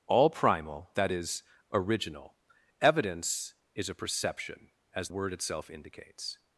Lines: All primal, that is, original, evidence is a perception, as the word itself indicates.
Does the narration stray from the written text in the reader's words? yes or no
yes